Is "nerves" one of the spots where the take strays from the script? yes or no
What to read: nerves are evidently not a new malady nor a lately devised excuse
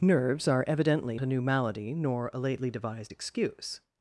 no